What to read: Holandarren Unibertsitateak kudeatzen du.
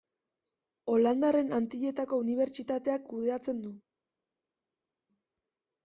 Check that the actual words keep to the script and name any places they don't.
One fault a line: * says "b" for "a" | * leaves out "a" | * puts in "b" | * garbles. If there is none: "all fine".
* puts in "Antilletako"